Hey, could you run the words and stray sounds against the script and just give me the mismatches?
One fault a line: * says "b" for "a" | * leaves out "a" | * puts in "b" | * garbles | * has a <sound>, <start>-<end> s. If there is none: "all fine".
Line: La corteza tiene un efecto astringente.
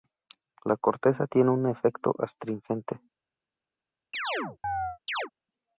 * has a chirp, 4.1-5.3 s